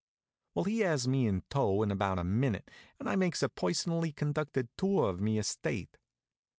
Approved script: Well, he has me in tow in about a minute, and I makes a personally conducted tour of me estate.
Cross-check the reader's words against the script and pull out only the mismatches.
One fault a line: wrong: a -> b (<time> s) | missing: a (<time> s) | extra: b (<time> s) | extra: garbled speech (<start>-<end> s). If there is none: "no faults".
no faults